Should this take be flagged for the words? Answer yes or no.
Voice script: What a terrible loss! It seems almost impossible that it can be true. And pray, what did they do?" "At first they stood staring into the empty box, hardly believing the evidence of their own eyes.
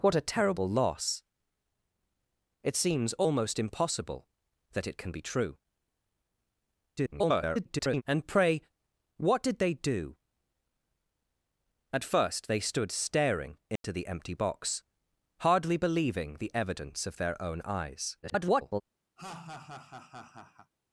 yes